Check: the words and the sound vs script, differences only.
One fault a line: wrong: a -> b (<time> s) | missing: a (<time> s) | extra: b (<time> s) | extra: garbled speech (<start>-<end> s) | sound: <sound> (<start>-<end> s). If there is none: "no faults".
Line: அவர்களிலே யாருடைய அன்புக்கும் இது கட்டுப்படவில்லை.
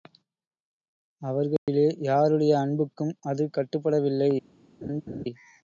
sound: dropout (1.6-1.7 s)
wrong: இது -> அது (3.2 s)
sound: laugh (4.8-5.3 s)